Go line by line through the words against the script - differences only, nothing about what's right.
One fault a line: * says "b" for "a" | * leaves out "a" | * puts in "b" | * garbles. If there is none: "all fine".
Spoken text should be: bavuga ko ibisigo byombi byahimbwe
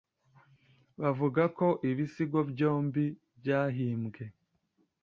all fine